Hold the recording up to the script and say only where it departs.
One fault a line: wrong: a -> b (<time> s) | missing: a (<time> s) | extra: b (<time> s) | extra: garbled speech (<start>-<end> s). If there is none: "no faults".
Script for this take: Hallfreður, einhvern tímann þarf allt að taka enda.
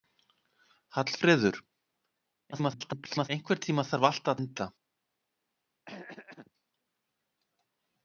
extra: garbled speech (2.5-3.3 s)
missing: taka (4.4 s)